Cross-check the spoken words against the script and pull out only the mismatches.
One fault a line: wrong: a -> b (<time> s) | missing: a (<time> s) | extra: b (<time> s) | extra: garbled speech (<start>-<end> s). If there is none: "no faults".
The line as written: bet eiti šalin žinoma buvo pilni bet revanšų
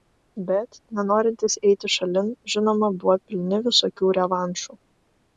extra: nenorintys (1.0 s)
wrong: bet -> visokių (3.7 s)